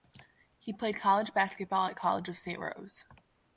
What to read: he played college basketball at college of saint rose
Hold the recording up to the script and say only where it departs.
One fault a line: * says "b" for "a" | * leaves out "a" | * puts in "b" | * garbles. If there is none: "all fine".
all fine